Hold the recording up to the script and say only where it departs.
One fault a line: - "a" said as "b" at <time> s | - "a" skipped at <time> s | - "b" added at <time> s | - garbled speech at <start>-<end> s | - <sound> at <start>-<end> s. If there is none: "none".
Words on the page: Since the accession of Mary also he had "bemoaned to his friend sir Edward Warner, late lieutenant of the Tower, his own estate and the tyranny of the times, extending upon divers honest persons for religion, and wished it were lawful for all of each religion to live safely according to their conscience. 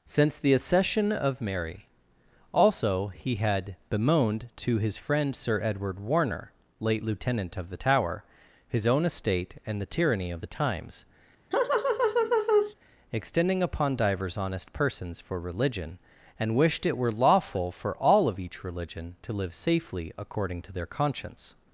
- laugh at 11.5-12.7 s